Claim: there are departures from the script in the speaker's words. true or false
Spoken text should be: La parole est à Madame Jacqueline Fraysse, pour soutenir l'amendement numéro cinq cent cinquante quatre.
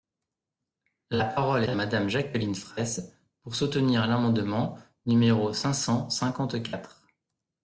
true